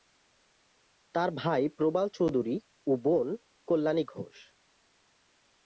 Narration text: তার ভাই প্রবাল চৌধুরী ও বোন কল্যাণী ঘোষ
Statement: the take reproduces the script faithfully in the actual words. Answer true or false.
true